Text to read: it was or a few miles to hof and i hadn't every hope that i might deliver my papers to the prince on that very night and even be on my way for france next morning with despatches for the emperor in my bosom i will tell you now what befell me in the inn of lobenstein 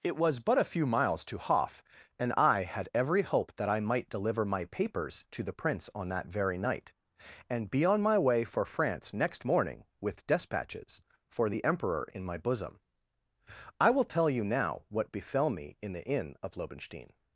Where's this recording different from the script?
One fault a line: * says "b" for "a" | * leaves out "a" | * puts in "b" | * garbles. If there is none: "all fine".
* says "but" for "or"
* says "had" for "hadn't"
* leaves out "even"